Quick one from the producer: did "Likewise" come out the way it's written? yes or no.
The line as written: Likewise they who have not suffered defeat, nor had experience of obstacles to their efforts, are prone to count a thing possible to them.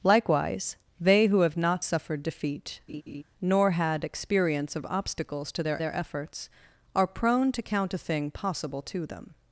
yes